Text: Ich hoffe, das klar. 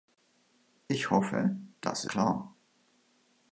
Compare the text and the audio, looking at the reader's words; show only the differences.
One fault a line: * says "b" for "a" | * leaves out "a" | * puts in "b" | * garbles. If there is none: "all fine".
all fine